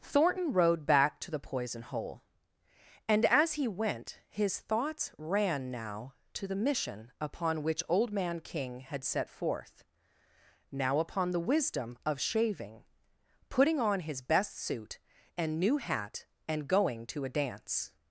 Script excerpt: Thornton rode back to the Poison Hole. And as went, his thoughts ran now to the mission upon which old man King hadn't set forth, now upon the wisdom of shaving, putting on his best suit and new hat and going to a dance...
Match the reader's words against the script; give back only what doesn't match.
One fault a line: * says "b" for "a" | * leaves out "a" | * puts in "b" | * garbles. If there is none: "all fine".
* puts in "he"
* says "had" for "hadn't"